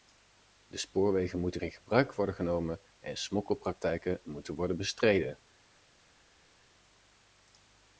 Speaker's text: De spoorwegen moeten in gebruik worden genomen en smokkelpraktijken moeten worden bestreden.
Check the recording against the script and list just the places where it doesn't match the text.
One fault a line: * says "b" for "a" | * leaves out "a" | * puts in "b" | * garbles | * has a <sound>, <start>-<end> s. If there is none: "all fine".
all fine